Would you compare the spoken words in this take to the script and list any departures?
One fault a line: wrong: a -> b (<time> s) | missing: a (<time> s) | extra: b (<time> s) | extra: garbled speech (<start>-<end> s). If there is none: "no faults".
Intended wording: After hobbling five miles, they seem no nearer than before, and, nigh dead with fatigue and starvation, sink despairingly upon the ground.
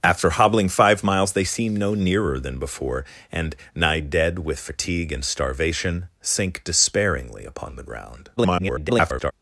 extra: garbled speech (8.4-9.3 s)